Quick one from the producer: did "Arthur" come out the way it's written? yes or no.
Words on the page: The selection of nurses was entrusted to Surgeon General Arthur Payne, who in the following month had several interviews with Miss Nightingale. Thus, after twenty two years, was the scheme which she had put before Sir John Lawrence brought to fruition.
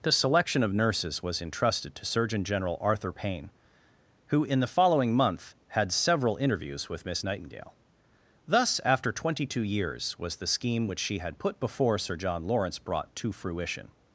yes